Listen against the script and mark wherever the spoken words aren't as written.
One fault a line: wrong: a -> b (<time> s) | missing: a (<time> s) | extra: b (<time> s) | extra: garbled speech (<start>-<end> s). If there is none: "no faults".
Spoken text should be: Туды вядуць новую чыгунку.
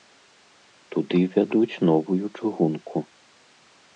no faults